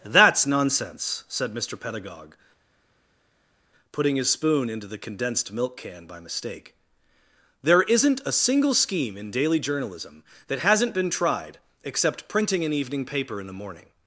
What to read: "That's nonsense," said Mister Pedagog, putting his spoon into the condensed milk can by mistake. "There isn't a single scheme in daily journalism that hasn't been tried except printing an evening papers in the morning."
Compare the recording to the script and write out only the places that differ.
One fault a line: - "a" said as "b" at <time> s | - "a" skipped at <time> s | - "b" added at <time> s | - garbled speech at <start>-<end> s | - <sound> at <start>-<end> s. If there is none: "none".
- "papers" said as "paper" at 13.0 s